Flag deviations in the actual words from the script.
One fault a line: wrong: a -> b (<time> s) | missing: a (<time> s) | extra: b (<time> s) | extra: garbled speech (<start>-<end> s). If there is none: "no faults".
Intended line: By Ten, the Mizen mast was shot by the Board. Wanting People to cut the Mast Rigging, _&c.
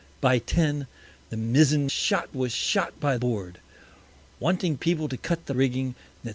wrong: mast -> shot (1.9 s)
missing: the (3.2 s)
missing: Mast (5.5 s)